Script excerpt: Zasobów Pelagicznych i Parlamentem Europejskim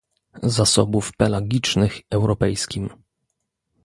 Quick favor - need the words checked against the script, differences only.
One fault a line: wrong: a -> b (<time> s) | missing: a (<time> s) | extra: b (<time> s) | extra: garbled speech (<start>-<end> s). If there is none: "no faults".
missing: i Parlamentem (2.0 s)